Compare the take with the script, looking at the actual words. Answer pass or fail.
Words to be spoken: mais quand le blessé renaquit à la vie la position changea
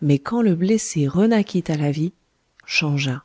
fail